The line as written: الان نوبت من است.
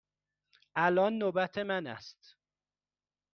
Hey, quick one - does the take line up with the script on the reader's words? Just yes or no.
yes